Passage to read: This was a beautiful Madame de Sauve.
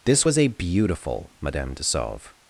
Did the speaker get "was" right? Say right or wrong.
right